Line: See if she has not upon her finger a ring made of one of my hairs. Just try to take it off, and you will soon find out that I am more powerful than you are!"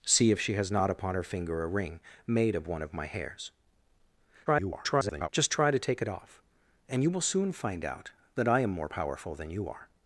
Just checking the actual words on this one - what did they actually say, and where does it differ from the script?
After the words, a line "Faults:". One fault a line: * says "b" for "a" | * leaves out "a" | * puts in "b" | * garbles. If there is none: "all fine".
See if she has not upon her finger a ring made of one of my hairs. [garbled] Just try to take it off, and you will soon find out that I am more powerful than you are!"
Faults:
* garbles